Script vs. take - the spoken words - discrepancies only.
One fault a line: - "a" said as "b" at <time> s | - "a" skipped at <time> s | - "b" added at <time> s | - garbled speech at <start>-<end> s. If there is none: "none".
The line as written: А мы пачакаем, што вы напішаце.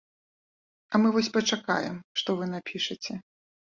- "вось" added at 1.2 s